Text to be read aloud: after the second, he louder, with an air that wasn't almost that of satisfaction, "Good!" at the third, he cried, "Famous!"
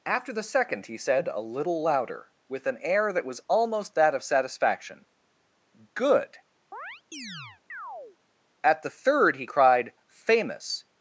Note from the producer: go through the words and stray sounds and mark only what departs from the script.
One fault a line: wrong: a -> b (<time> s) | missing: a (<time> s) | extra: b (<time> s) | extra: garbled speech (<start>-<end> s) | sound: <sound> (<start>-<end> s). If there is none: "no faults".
extra: said a little (1.0 s)
wrong: wasn't -> was (3.2 s)
sound: chirp (6.7-8.2 s)